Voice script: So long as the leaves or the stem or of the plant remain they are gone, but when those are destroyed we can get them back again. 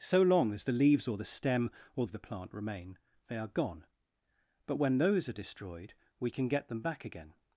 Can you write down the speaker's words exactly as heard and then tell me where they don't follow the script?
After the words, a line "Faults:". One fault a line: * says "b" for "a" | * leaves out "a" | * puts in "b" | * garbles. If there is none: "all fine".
So long as the leaves or the stem or of the plant remain they are gone, but when those are destroyed we can get them back again.
Faults:
all fine